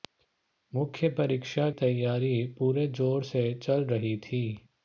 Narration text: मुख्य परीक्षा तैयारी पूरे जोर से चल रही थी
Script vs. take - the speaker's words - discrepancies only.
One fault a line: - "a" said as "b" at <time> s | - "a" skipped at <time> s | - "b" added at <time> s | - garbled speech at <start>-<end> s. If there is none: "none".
none